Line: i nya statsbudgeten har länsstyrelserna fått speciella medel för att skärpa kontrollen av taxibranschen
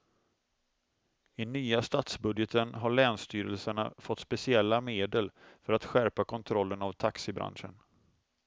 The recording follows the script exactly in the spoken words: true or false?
true